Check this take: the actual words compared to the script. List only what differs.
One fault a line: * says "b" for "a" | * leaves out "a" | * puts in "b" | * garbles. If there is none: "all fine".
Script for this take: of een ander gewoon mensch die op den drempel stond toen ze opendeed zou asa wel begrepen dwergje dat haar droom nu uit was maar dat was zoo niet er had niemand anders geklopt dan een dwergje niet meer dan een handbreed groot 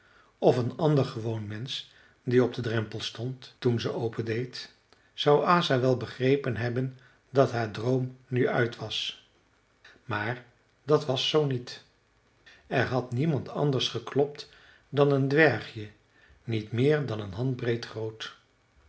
* says "hebben" for "dwergje"